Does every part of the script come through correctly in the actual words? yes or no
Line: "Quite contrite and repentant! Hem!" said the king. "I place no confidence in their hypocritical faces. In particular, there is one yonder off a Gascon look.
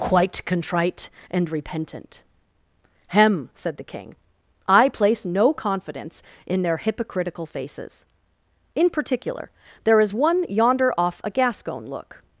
yes